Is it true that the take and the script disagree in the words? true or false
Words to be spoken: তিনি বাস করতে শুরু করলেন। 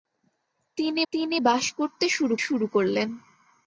true